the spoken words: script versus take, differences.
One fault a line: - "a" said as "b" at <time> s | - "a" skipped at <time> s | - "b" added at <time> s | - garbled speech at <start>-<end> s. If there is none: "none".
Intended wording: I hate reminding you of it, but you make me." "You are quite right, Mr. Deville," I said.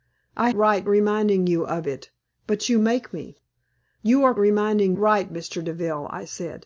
- "hate" said as "right" at 0.5 s
- "quite" said as "reminding" at 4.4 s